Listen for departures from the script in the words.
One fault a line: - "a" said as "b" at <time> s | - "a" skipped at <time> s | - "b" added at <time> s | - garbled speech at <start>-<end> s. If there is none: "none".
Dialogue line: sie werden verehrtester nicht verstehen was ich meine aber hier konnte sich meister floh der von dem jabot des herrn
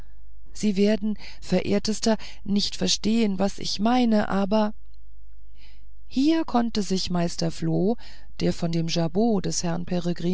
none